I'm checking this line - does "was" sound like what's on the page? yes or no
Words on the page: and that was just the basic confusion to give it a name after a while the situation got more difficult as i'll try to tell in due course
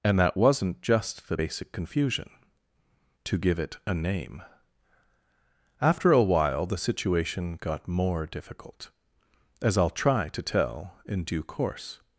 no